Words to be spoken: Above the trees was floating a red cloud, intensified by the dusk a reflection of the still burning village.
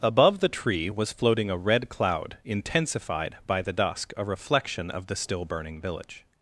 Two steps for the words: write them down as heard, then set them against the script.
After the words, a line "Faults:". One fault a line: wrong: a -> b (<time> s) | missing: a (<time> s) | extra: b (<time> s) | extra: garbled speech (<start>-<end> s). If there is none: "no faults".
Above the tree was floating a red cloud, intensified by the dusk a reflection of the still burning village.
Faults:
wrong: trees -> tree (0.5 s)